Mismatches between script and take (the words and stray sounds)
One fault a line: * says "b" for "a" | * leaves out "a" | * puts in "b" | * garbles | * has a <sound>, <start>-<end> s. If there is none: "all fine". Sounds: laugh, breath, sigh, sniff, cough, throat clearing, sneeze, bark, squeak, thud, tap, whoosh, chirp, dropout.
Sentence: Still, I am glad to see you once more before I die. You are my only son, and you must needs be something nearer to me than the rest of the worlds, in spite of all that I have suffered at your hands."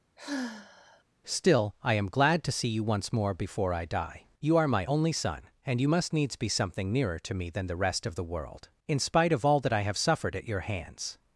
* has a sigh, 0.2-1.0 s
* says "world" for "worlds"